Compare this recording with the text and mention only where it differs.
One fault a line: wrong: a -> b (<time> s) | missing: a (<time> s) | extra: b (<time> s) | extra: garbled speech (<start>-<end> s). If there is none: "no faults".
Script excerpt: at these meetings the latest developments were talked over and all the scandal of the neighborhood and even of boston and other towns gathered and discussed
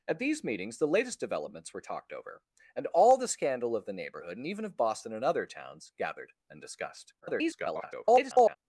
extra: garbled speech (7.2-8.6 s)